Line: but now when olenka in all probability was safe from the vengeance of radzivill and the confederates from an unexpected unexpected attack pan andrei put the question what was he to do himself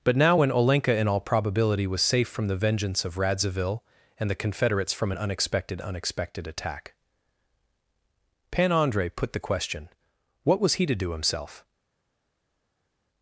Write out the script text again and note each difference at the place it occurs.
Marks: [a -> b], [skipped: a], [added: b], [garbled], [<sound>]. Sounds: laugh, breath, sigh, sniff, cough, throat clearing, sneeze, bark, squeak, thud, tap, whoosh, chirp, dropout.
but now when olenka in all probability was safe from the vengeance of radzivill and the confederates from an unexpected unexpected attack pan andrei put the question what was he to do himself